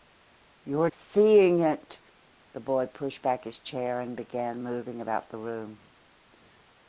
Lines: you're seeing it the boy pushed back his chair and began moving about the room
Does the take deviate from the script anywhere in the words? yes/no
no